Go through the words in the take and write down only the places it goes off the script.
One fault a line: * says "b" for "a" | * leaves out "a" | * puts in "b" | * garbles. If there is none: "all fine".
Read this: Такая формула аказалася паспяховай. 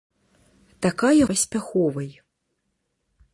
* leaves out "формула аказалася"